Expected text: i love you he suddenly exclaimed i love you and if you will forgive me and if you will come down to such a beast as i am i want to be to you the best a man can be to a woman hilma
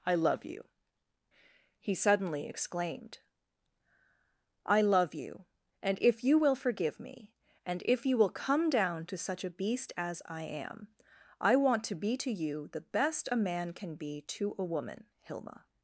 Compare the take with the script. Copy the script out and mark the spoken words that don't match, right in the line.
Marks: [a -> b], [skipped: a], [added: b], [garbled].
i love you he suddenly exclaimed i love you and if you will forgive me and if you will come down to such a beast as i am i want to be to you the best a man can be to a woman hilma